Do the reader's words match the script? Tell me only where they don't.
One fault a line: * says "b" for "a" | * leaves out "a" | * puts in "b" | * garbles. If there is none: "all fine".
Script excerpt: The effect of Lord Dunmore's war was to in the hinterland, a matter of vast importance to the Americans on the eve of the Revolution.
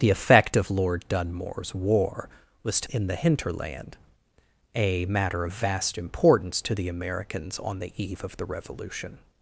all fine